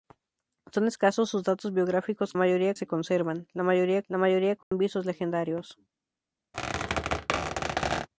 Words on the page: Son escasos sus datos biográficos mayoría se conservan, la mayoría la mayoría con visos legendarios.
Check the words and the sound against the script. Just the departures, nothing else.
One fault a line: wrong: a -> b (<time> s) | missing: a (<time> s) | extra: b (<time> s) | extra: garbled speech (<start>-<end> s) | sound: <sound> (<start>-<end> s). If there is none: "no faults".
sound: dropout (4.6-4.7 s)
sound: squeak (6.5-8.1 s)